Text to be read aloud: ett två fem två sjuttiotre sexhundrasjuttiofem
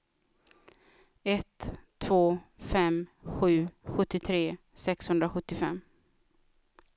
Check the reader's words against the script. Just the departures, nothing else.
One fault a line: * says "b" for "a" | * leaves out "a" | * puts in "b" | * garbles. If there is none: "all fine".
* says "sju" for "två"